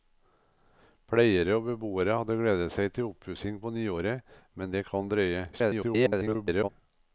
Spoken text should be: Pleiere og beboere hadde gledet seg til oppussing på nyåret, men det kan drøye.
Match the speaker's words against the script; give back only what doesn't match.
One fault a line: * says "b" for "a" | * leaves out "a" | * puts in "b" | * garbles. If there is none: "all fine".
* garbles